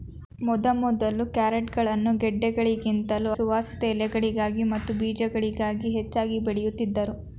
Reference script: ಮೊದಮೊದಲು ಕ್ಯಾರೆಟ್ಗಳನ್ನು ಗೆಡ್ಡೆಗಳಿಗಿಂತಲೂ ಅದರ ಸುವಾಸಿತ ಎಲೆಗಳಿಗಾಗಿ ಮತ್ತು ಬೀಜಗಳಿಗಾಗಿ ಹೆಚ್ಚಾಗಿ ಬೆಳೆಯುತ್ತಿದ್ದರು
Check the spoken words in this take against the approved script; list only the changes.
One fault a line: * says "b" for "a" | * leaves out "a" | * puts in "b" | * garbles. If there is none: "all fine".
* leaves out "ಅದರ"